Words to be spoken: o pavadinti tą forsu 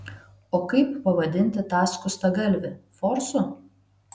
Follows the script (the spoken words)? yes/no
no